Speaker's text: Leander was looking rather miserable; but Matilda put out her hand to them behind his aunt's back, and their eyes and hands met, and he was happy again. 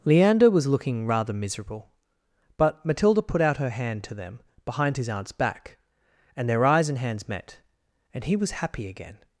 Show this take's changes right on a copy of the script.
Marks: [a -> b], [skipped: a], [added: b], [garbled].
Leander was looking rather miserable; but Matilda put out her hand to them behind his aunt's back, and their eyes and hands met, and he was happy again.